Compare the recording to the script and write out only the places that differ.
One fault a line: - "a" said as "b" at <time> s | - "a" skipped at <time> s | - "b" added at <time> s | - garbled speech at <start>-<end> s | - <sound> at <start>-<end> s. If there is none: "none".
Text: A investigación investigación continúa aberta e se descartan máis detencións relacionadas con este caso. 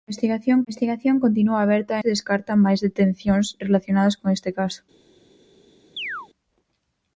- chirp at 6.0-6.3 s